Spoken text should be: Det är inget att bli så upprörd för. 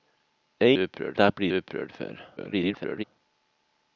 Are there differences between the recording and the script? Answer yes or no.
yes